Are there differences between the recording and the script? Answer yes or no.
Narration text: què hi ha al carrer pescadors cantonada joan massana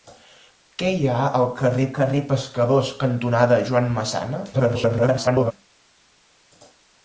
yes